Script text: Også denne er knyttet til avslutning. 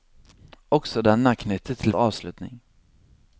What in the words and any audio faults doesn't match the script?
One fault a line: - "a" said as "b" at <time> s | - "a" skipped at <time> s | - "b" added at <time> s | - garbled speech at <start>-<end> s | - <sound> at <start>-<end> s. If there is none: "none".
none